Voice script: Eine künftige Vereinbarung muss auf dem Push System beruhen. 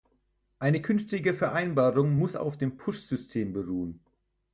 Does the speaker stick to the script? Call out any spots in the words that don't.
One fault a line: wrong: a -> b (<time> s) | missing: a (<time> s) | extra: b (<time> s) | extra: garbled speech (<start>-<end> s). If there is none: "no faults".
no faults